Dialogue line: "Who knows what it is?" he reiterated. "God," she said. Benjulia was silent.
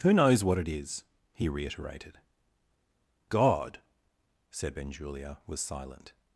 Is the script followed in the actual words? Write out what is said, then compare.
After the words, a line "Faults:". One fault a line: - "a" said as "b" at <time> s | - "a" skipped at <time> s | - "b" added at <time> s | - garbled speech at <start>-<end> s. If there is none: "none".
"Who knows what it is?" he reiterated. "God," said. Benjulia was silent.
Faults:
- "she" skipped at 3.8 s